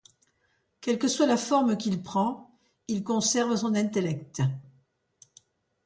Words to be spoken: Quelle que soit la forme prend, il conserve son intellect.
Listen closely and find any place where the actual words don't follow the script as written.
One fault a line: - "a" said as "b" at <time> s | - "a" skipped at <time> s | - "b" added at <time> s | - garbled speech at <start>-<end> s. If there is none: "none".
- "qu'il" added at 1.8 s